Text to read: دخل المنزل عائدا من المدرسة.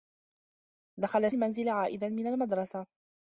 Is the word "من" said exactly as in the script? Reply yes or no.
yes